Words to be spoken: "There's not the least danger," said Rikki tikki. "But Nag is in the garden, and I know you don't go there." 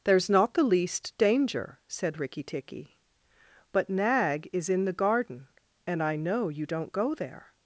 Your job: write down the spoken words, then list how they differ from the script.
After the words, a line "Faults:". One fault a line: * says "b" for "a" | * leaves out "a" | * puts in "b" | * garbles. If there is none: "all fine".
"There's not the least danger," said Rikki tikki. "But Nag is in the garden, and I know you don't go there."
Faults:
all fine